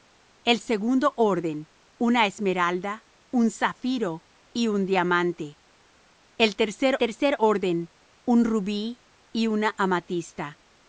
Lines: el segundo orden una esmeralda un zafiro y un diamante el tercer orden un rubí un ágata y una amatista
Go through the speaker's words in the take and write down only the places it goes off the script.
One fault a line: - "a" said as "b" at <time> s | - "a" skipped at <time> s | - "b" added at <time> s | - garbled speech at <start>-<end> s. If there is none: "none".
- "tercer" added at 7.0 s
- "un ágata" skipped at 9.0 s